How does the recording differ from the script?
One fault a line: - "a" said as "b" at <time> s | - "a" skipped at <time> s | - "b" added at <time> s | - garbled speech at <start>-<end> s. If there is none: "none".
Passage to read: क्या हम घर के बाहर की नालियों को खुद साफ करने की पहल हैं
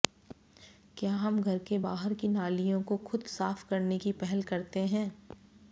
- "करते" added at 4.4 s